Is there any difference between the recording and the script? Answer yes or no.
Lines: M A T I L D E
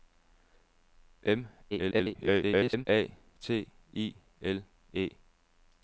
yes